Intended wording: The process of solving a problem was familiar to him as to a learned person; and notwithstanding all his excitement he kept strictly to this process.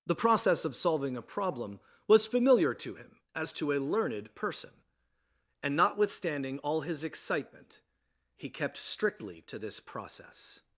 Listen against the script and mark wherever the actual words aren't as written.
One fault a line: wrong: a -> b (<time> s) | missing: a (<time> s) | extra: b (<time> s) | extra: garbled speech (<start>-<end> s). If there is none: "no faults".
no faults